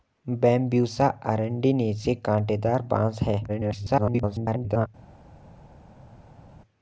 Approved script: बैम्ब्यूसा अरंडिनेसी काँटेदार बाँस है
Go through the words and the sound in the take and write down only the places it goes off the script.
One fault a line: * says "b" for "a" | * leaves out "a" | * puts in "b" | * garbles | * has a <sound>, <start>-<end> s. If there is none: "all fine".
* garbles